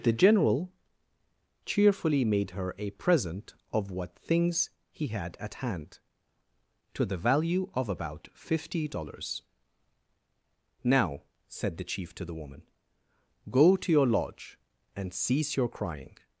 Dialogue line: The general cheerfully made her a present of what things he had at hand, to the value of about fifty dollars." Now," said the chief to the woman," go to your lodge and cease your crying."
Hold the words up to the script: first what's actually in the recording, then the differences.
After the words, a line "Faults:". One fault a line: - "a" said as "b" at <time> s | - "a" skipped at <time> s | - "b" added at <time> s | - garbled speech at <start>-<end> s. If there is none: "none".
The general cheerfully made her a present of what things he had at hand, to the value of about fifty dollars." Now," said the chief to the woman," go to your lodge and cease your crying."
Faults:
none